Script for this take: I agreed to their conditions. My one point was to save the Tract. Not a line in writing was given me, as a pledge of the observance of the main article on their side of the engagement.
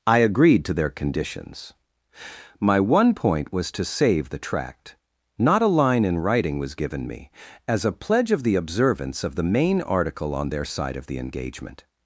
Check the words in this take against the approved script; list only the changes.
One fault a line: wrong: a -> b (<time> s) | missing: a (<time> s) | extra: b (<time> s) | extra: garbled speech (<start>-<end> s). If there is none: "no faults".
no faults